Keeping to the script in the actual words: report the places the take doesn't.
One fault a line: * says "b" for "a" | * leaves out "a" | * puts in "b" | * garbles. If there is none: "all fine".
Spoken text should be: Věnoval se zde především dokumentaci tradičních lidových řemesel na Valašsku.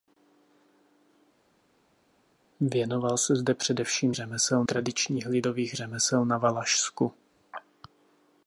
* says "řemesel" for "dokumentaci"